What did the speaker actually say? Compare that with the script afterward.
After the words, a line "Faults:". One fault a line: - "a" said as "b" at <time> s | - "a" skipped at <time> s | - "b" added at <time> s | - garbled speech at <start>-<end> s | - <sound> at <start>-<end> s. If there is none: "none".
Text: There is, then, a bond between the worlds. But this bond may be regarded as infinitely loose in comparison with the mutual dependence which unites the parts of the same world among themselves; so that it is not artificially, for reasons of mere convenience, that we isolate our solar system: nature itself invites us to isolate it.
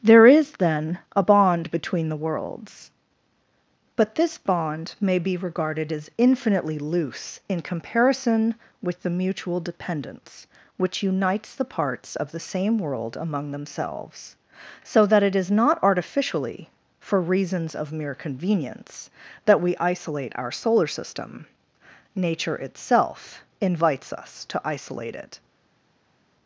There is, then, a bond between the worlds. But this bond may be regarded as infinitely loose in comparison with the mutual dependence which unites the parts of the same world among themselves; so that it is not artificially, for reasons of mere convenience, that we isolate our solar system: nature itself invites us to isolate it.
Faults:
none